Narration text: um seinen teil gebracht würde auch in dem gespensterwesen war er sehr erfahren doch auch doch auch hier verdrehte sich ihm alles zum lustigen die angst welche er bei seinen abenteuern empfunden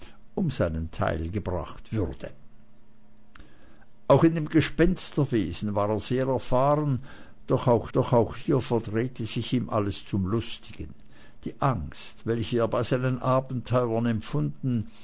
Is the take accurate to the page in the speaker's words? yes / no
yes